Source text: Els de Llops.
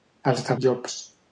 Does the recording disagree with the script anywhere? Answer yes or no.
no